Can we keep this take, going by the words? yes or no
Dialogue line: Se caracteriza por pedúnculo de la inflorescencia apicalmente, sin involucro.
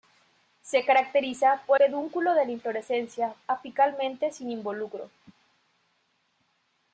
yes